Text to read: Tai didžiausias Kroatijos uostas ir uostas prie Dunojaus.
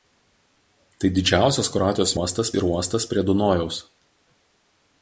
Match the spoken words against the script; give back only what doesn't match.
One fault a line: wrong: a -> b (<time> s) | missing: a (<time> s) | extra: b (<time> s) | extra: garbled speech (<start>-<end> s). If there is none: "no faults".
no faults